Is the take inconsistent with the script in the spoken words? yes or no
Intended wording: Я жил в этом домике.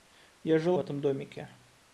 no